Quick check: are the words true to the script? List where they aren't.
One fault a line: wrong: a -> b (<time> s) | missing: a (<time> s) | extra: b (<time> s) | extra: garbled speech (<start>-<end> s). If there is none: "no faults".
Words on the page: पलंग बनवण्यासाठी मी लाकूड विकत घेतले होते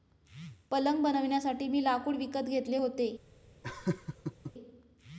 no faults